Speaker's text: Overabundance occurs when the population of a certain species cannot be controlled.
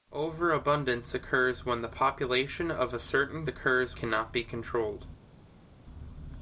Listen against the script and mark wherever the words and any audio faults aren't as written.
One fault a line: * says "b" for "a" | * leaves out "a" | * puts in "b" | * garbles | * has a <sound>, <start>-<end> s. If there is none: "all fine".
* says "occurs" for "species"